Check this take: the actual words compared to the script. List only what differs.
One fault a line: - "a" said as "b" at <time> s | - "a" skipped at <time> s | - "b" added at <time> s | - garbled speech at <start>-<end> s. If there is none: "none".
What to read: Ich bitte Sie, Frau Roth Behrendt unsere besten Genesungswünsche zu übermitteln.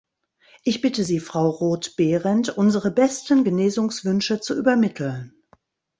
none